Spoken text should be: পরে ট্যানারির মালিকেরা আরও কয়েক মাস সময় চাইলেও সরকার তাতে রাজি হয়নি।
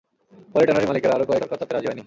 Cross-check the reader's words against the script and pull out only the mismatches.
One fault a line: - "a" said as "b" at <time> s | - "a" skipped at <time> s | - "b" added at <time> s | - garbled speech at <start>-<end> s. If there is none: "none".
- "মাস সময় চাইলেও" skipped at 1.4 s